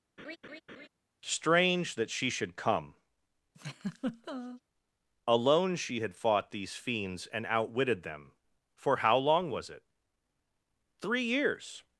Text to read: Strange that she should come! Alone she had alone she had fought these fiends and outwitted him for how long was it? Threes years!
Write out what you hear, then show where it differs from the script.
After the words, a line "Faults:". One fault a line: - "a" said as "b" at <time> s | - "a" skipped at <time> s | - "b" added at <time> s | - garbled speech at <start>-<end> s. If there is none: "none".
Strange that she should come! Alone she had fought these fiends and outwitted them for how long was it? Three years!
Faults:
- "alone she had" skipped at 6.1 s
- "him" said as "them" at 8.0 s
- "Threes" said as "Three" at 11.0 s